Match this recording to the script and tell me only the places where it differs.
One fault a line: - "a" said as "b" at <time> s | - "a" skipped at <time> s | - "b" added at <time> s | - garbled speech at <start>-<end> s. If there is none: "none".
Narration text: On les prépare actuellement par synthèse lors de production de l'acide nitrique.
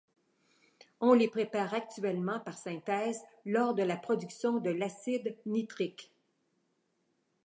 - "la" added at 3.8 s